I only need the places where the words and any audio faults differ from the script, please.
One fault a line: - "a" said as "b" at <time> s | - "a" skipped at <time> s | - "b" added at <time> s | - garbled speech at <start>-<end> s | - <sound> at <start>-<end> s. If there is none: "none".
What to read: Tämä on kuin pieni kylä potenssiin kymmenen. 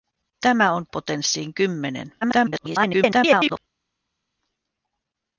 - "kuin pieni kylä" skipped at 0.8 s
- garbled speech at 2.2-3.6 s